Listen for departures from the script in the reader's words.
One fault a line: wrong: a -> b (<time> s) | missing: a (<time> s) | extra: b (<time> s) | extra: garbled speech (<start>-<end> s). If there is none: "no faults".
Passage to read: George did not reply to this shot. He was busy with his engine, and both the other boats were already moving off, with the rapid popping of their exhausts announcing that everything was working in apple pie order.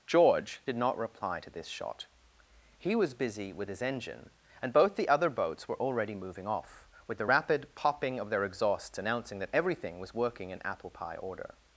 no faults